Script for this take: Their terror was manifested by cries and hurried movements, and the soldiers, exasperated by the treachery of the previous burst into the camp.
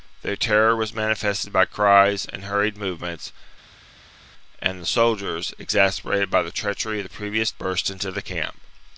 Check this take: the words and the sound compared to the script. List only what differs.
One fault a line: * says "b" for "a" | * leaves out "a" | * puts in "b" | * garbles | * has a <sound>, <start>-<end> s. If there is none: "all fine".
all fine